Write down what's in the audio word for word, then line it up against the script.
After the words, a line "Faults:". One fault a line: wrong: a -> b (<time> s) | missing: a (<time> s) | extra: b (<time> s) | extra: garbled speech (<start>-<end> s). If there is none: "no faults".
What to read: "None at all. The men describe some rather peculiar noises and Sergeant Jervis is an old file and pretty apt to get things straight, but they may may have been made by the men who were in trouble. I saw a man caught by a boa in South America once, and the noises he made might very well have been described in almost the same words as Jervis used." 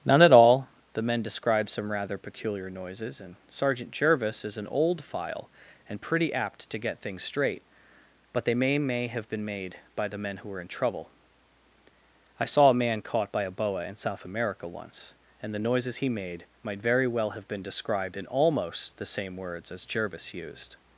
"None at all. The men describe some rather peculiar noises and Sergeant Jervis is an old file and pretty apt to get things straight, but they may may have been made by the men who were in trouble. I saw a man caught by a boa in South America once, and the noises he made might very well have been described in almost the same words as Jervis used."
Faults:
no faults